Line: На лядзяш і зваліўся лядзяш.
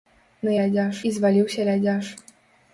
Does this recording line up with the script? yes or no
yes